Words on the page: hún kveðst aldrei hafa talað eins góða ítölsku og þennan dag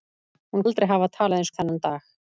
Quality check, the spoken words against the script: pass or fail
fail